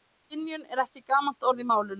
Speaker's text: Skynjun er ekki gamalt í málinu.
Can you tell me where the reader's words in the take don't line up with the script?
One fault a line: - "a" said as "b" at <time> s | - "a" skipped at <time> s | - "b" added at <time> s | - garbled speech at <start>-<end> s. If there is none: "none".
- "orð" added at 1.5 s